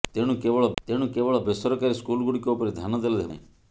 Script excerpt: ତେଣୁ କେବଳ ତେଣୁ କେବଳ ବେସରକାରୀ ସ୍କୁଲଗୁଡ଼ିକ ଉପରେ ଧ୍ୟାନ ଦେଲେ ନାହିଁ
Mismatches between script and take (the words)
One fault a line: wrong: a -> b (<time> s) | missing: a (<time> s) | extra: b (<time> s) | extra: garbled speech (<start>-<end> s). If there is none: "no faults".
no faults